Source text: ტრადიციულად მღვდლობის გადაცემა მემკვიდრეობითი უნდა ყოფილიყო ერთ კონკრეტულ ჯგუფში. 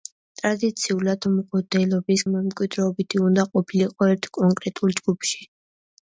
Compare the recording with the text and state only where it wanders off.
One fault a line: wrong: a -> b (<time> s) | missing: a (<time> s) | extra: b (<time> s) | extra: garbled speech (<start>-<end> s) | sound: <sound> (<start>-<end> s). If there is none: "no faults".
missing: გადაცემა (2.2 s)